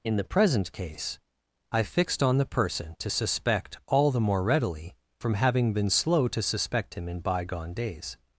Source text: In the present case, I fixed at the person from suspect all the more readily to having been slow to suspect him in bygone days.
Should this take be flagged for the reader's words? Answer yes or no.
yes